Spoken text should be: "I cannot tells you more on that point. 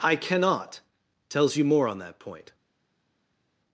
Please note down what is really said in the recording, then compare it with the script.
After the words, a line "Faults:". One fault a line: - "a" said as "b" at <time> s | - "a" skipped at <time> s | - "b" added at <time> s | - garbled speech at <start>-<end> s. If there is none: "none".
"I cannot tells you more on that point.
Faults:
none